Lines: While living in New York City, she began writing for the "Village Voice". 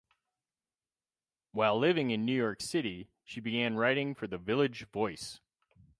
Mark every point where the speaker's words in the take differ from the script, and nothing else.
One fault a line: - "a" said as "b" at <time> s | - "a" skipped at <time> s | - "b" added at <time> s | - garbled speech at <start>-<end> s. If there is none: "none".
none